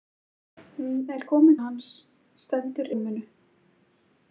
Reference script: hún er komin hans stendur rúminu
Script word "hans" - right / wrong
right